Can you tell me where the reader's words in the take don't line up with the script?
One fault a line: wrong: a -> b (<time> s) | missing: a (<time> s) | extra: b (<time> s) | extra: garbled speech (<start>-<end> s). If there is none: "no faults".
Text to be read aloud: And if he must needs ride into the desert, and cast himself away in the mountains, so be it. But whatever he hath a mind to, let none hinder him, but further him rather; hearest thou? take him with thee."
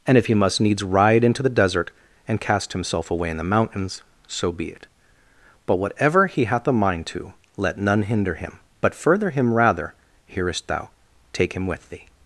no faults